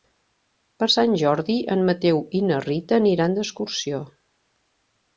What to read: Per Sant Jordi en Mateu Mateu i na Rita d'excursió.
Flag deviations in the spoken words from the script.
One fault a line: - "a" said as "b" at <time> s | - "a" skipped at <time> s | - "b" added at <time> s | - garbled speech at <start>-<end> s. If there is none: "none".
- "Mateu" skipped at 2.2 s
- "aniran" added at 3.0 s